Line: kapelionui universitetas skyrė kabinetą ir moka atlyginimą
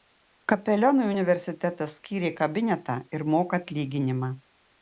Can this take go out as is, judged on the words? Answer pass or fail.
pass